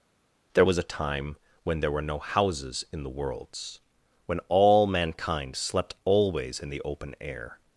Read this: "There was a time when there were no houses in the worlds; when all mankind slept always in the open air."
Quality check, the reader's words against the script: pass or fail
pass